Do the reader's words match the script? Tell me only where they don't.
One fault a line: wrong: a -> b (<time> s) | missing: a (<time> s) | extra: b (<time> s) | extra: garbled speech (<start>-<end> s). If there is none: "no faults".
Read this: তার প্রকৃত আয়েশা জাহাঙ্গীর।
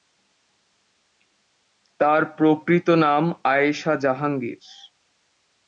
extra: নাম (3.0 s)